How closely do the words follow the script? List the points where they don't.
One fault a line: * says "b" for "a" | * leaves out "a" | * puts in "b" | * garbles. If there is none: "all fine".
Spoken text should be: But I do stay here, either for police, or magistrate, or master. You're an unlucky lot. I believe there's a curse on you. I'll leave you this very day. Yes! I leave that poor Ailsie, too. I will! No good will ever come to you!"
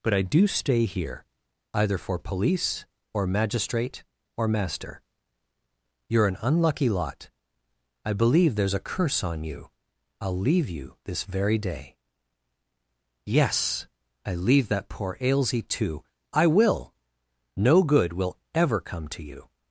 all fine